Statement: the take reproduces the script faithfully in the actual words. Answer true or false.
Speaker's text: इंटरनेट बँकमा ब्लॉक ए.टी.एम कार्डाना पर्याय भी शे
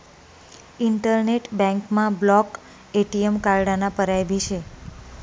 true